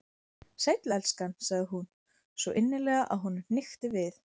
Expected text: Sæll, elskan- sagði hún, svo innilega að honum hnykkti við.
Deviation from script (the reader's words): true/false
false